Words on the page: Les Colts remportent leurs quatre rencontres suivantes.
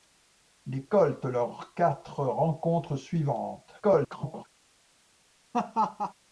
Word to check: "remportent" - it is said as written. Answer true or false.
false